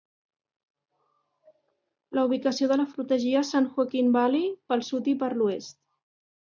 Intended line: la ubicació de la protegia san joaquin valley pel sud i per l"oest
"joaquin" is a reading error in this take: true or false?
false